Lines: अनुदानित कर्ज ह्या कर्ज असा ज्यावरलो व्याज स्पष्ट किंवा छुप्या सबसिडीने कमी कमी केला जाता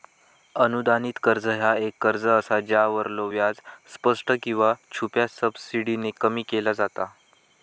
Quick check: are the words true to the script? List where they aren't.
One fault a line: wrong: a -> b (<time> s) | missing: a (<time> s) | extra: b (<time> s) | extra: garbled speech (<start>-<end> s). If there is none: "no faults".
extra: एक (1.8 s)
missing: कमी (6.4 s)